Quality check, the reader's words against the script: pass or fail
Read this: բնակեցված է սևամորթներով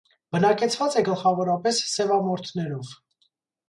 fail